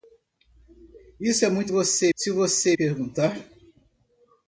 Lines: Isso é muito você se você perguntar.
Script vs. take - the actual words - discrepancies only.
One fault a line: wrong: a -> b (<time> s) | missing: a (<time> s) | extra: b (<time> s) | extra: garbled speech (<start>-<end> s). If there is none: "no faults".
no faults